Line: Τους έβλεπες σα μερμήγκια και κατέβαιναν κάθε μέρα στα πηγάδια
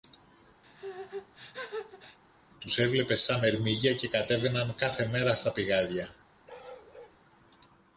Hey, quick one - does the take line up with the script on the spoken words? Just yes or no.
yes